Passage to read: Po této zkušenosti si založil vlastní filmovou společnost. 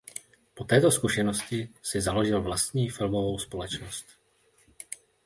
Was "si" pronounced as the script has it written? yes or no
yes